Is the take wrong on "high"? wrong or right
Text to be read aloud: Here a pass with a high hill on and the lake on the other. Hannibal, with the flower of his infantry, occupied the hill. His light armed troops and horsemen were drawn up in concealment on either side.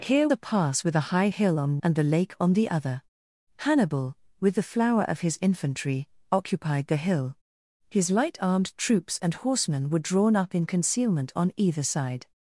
right